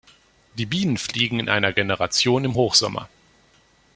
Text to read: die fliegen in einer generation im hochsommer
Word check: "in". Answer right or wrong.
right